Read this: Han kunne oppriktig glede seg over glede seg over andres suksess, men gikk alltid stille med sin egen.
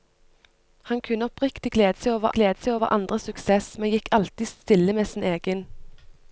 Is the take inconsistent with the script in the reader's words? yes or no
no